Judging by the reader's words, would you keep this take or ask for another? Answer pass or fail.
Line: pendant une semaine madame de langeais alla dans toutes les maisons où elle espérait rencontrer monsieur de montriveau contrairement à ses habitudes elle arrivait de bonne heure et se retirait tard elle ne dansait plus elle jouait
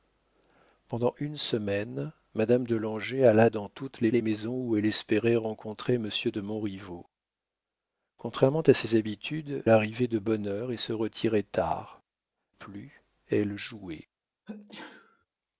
fail